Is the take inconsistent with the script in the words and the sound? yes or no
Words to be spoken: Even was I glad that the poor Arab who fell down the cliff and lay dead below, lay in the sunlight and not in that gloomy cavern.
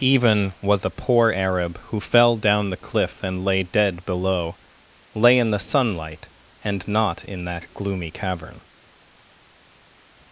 yes